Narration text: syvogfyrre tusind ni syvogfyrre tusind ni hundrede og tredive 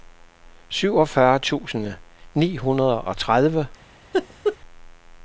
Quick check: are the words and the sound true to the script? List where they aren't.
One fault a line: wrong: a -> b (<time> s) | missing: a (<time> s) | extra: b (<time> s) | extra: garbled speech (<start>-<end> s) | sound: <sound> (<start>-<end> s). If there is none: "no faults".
missing: syvogfyrre tusind ni (2.6 s)
sound: laugh (4.1-4.6 s)